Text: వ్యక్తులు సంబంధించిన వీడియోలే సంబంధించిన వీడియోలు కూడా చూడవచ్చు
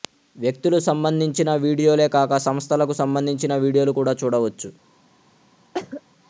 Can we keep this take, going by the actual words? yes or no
no